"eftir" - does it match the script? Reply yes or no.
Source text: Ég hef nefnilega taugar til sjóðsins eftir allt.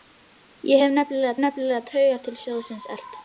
no